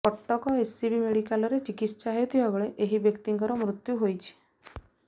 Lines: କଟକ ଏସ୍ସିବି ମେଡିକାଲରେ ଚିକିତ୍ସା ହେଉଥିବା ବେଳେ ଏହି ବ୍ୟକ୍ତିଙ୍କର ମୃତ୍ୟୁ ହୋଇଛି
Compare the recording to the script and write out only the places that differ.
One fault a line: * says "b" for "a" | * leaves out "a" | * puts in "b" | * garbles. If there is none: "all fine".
all fine